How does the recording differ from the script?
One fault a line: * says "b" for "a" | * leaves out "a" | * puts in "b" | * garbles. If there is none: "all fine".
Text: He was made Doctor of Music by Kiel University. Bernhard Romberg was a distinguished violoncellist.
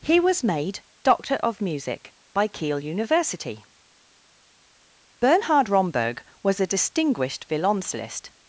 all fine